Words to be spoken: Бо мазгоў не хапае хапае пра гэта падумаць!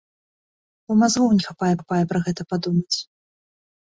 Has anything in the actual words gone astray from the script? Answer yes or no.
no